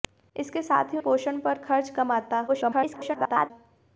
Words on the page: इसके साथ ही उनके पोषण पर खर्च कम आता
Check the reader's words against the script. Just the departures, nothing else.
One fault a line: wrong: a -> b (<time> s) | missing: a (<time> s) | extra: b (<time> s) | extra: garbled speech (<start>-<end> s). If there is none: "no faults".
missing: उनके (1.0 s)
extra: garbled speech (2.5-3.5 s)